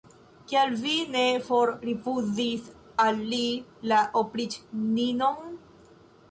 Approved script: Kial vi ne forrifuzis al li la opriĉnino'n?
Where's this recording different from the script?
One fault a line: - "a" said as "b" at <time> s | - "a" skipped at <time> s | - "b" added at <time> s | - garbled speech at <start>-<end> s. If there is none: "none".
none